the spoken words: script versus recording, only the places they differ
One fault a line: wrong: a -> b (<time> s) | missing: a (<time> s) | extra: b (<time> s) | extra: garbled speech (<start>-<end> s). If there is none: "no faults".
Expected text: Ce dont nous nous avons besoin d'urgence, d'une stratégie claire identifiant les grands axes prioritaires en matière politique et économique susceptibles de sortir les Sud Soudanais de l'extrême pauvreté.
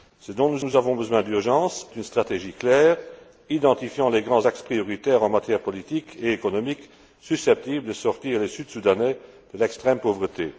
no faults